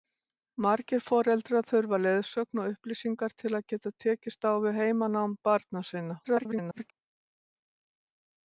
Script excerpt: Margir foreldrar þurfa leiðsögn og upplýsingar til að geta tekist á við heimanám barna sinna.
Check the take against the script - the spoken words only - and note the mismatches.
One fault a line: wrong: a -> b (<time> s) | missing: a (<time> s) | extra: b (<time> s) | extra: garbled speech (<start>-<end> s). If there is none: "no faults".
extra: garbled speech (6.2-6.9 s)